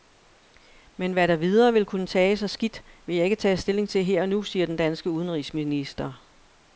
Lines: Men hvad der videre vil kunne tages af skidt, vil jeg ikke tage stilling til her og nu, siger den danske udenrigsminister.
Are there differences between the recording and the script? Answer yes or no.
no